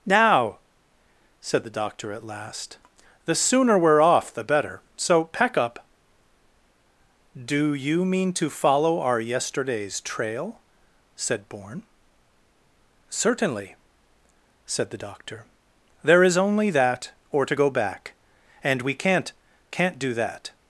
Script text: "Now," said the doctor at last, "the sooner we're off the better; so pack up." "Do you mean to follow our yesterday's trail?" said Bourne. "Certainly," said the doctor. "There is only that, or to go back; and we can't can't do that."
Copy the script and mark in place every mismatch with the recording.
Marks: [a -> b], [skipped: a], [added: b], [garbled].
"Now," said the doctor at last, "the sooner we're off the better; so pack up." "Do you mean to follow our yesterday's trail?" said Bourne. "Certainly," said the doctor. "There is only that, or to go back; and we can't can't do that."